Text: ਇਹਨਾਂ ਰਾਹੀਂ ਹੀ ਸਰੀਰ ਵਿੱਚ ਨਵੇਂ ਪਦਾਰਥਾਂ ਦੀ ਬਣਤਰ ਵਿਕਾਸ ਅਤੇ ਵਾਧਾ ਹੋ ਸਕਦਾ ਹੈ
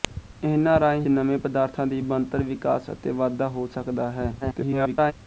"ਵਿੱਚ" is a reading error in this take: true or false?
true